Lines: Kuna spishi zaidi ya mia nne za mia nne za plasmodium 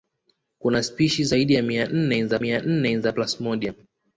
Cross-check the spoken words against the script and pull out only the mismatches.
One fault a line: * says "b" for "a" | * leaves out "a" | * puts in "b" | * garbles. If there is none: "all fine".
all fine